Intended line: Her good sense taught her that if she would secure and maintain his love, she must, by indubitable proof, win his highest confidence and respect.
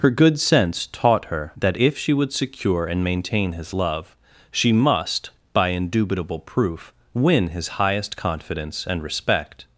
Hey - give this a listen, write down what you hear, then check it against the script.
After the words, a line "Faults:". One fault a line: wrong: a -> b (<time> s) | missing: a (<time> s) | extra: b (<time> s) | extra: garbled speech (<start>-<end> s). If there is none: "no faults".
Her good sense taught her that if she would secure and maintain his love, she must, by indubitable proof, win his highest confidence and respect.
Faults:
no faults